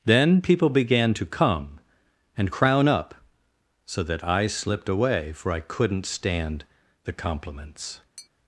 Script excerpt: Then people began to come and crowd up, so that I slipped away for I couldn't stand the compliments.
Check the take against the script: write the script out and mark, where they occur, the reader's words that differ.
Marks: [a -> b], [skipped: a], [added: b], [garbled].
Then people began to come and [crowd -> crown] up, so that I slipped away for I couldn't stand the compliments.